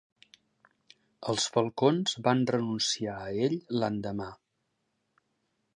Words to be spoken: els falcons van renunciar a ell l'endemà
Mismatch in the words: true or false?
false